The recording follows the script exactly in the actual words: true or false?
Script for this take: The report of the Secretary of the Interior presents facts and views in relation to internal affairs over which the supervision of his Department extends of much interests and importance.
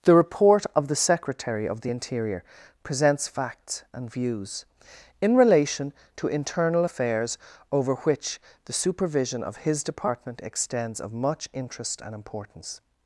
false